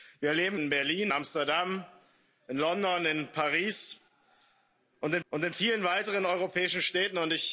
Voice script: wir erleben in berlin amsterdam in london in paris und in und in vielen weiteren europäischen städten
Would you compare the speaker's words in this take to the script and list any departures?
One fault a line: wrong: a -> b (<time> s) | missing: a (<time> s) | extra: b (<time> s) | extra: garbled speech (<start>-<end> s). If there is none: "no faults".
no faults